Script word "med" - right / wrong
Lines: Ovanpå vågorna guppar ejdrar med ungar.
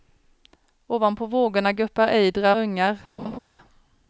wrong